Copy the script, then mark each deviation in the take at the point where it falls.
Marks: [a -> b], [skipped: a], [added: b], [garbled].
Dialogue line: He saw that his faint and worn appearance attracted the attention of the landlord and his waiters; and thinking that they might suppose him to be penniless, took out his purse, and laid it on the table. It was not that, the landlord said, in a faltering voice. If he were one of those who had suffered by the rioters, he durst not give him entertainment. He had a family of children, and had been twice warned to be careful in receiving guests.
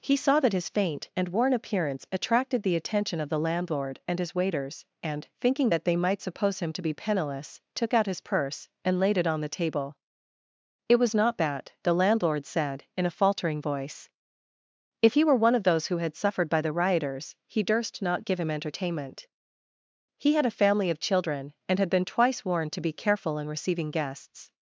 He saw that his faint and worn appearance attracted the attention of the landlord and his waiters; and thinking that they might suppose him to be penniless, took out his purse, and laid it on the table. It was not [that, -> bad] the landlord said, in a faltering voice. If he were one of those who had suffered by the rioters, he durst not give him entertainment. He had a family of children, and had been twice warned to be careful in receiving guests.